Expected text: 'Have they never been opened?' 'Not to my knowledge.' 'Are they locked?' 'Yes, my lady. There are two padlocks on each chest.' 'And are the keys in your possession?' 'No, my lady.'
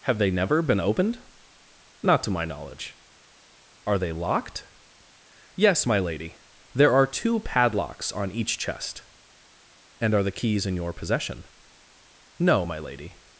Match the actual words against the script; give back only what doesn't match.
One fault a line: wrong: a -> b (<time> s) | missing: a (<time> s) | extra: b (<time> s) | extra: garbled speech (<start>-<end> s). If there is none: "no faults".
no faults